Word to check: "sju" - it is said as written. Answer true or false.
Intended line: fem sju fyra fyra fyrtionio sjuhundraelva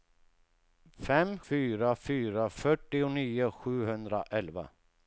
false